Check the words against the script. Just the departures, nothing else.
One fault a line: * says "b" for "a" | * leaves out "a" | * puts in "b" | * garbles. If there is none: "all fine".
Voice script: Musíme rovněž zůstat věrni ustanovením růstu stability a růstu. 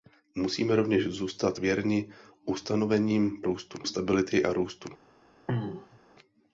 all fine